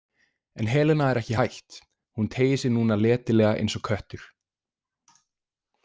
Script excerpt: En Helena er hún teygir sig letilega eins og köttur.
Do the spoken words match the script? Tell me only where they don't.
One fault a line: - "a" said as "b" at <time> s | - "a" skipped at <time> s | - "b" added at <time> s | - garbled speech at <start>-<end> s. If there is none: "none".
- "ekki hætt" added at 1.2 s
- "núna" added at 2.8 s